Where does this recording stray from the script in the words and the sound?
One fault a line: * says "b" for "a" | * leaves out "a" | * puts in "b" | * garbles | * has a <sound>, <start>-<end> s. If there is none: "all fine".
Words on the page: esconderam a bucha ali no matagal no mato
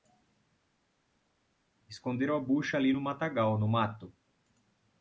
all fine